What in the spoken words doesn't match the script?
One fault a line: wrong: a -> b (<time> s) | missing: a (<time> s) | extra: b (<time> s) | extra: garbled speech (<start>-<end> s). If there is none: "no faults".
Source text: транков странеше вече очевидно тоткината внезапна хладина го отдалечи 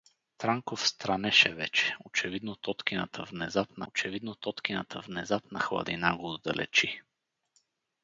extra: очевидно тоткината внезапна (3.9 s)